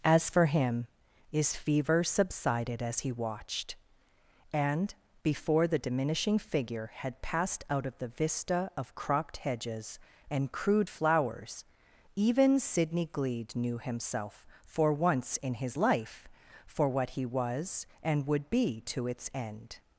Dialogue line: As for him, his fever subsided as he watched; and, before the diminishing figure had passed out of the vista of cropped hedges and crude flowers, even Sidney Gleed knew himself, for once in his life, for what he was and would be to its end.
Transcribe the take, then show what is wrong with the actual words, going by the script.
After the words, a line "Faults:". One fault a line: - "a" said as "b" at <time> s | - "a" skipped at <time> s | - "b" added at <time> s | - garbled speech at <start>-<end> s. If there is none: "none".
As for him, his fever subsided as he watched; and, before the diminishing figure had passed out of the vista of cropped hedges and crude flowers, even Sidney Gleed knew himself, for once in his life, for what he was and would be to its end.
Faults:
none